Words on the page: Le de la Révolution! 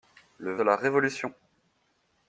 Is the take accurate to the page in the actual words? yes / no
yes